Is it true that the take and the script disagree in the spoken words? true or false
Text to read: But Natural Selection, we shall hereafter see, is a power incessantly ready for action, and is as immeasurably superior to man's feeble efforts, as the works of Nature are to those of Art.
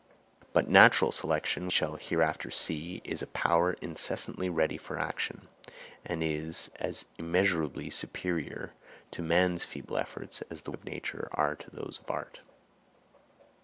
true